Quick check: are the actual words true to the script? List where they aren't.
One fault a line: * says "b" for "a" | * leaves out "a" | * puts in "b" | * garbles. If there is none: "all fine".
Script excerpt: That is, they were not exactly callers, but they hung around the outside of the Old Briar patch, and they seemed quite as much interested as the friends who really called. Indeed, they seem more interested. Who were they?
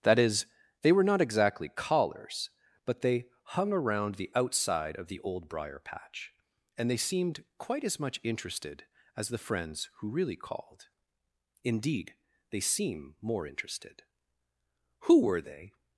all fine